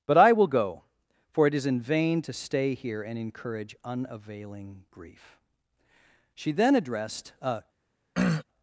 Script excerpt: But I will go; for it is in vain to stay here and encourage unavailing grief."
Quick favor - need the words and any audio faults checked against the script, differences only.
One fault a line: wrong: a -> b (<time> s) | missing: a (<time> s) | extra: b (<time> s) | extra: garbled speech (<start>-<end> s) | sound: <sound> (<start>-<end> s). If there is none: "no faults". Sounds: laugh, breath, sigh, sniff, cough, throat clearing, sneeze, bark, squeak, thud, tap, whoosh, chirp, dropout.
extra: She then addressed a (6.3 s)
sound: throat clearing (8.1-8.4 s)